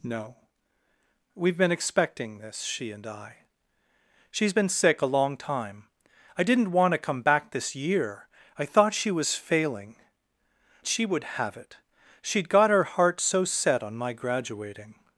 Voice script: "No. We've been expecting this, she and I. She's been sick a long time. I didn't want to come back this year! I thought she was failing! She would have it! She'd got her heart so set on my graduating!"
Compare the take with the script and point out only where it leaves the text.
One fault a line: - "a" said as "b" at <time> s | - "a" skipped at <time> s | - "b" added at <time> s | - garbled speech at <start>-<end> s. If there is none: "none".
none